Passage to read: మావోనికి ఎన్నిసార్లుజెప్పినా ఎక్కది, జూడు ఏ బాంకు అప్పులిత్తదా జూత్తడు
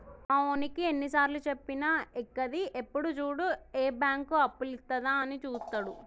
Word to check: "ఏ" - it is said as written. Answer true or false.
true